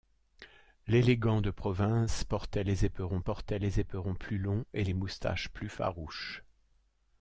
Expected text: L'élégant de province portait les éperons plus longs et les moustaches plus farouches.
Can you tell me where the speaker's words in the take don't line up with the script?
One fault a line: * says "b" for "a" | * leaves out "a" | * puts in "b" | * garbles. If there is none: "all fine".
* puts in "portait les éperons"